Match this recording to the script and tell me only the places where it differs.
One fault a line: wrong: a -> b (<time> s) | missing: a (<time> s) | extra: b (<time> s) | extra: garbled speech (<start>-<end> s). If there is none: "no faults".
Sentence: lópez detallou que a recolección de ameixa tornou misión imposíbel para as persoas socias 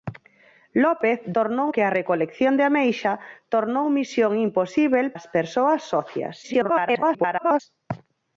wrong: detallou -> tornou (1.4 s)
missing: para (5.1 s)
extra: garbled speech (6.4-7.6 s)